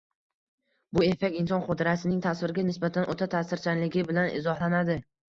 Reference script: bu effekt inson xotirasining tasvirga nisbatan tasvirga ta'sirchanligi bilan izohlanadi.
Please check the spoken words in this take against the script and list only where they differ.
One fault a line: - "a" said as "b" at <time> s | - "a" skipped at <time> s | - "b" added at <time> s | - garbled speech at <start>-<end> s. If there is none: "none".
- "tasvirga" said as "o‘ta" at 3.2 s